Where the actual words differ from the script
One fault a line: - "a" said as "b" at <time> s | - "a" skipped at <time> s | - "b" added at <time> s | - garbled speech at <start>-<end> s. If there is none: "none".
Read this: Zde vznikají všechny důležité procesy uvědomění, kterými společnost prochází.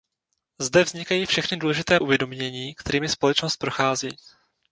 - "procesy" skipped at 2.0 s